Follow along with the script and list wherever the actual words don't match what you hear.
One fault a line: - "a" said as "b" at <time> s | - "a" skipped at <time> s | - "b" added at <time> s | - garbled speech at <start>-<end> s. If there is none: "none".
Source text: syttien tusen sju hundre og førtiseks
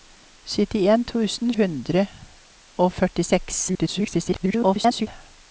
- "sju" skipped at 1.5 s
- garbled speech at 3.7-5.1 s